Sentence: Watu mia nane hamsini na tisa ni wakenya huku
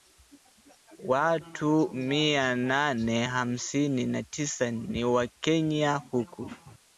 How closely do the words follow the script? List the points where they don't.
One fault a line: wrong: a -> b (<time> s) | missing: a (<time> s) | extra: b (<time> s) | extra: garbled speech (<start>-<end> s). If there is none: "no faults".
no faults